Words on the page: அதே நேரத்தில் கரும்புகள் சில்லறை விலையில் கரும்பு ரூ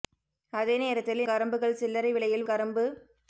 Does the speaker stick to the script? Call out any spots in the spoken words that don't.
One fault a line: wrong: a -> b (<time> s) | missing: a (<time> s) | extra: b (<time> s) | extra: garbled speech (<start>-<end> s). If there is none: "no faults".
no faults